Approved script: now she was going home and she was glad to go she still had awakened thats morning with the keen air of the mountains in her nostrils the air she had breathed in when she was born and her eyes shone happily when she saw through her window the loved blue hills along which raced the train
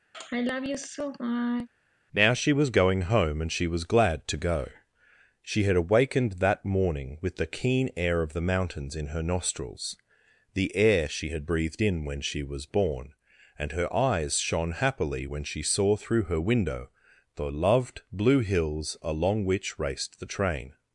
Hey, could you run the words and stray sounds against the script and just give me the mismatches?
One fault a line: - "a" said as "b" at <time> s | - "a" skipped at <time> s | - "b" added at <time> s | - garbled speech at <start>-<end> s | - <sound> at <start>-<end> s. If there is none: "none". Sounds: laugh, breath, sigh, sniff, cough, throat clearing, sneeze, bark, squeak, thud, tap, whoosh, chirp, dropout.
- sigh at 0.1-1.7 s
- "still" skipped at 5.6 s
- "thats" said as "that" at 6.3 s